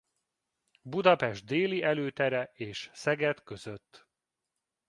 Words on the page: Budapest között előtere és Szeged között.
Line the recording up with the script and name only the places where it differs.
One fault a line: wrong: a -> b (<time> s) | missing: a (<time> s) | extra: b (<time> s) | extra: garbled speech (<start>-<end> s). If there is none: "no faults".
wrong: között -> déli (1.4 s)